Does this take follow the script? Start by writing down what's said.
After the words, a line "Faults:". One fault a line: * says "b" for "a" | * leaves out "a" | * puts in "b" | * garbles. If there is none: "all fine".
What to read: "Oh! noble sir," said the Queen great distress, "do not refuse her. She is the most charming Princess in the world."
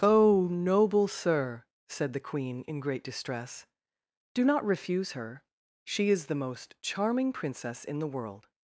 "Oh! noble sir," said the Queen in great distress, "do not refuse her. She is the most charming Princess in the world."
Faults:
* puts in "in"